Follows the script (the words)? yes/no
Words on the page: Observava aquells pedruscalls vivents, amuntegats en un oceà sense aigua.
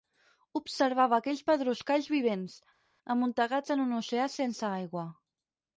yes